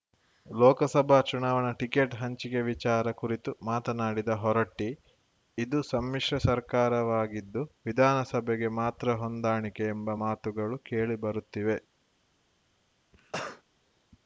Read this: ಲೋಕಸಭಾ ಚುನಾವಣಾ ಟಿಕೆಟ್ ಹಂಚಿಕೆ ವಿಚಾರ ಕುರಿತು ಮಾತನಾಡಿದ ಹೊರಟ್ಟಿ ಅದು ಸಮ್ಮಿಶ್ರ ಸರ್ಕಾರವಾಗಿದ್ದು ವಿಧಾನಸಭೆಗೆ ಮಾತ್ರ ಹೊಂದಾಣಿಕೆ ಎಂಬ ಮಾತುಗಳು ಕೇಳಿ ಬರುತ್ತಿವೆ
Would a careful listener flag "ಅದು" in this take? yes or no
yes